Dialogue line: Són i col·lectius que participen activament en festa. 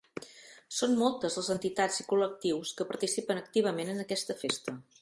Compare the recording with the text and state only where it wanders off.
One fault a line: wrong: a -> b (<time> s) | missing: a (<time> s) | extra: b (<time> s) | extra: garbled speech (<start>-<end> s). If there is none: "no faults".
extra: moltes les entitats (1.0 s)
extra: aquesta (4.1 s)